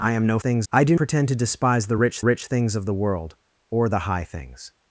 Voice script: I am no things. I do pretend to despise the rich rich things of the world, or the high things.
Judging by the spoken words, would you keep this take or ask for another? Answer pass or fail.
pass